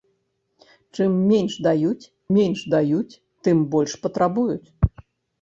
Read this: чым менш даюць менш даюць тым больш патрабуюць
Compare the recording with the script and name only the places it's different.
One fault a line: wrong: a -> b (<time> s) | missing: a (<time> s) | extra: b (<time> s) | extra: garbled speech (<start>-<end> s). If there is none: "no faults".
no faults